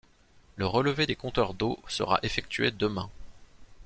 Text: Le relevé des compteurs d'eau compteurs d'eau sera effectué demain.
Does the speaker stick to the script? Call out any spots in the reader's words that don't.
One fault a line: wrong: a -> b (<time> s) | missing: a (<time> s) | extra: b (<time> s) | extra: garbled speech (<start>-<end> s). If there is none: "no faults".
missing: compteurs d'eau (1.8 s)